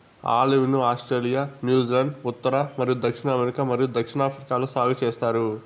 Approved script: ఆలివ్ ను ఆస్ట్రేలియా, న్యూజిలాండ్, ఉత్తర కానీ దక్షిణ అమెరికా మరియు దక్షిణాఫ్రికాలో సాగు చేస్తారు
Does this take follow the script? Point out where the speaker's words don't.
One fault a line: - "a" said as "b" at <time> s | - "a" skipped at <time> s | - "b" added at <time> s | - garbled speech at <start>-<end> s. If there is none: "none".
- "కానీ" said as "మరియు" at 2.8 s